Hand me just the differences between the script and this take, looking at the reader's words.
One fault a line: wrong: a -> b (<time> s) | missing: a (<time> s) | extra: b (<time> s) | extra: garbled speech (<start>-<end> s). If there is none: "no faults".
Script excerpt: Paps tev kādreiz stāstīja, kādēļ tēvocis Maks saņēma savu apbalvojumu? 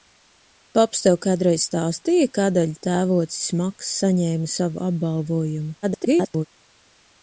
extra: garbled speech (5.8-6.5 s)